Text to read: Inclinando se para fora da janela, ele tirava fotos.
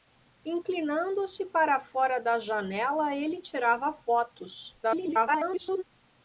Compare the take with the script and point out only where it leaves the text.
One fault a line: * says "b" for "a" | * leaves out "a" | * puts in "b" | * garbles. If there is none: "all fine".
* garbles